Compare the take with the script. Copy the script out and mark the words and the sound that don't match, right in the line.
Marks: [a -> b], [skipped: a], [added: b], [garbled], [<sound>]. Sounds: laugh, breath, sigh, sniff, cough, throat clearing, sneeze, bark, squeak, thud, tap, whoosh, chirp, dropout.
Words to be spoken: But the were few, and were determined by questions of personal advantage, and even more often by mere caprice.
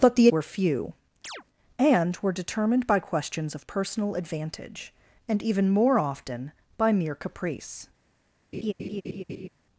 But the were few, [chirp] and were determined by questions of personal advantage, and even more often by mere caprice. [laugh]